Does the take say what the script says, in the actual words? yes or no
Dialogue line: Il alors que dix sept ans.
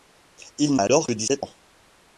yes